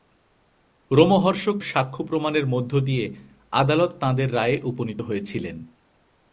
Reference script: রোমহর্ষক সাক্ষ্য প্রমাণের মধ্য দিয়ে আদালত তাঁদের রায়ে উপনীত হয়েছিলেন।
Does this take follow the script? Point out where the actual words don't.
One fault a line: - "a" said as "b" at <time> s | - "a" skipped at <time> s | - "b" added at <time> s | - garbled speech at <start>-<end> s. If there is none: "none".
none